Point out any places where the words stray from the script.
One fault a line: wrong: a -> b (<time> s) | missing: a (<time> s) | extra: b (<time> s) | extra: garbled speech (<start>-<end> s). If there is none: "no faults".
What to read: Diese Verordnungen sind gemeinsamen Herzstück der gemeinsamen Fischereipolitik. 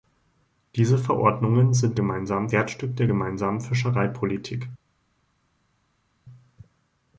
no faults